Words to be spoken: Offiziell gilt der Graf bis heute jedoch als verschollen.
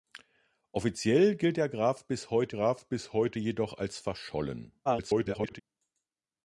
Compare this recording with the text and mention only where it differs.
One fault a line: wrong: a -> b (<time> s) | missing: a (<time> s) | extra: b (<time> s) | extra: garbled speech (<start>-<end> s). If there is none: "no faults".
extra: Graf bis heute (2.5 s)
extra: garbled speech (4.8-5.6 s)